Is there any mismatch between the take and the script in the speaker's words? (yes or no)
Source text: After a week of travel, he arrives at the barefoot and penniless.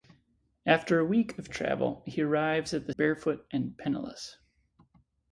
no